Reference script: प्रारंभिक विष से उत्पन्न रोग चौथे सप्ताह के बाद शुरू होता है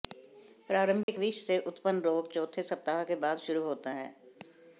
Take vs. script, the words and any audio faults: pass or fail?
fail